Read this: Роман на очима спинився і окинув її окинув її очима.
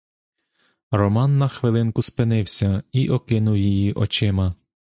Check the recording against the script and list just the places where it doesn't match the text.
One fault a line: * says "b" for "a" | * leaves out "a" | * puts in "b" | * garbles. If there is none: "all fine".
* says "хвилинку" for "очима"
* leaves out "окинув її"